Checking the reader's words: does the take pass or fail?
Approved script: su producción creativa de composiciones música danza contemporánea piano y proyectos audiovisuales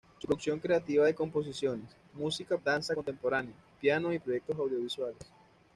pass